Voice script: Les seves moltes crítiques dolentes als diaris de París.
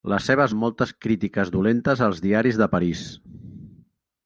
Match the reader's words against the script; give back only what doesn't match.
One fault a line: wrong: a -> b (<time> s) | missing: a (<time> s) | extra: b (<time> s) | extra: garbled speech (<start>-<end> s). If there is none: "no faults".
no faults